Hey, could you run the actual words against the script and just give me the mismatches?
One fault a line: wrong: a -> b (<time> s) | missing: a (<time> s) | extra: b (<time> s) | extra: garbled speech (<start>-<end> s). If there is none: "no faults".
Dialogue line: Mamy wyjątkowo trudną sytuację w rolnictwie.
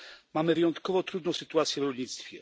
no faults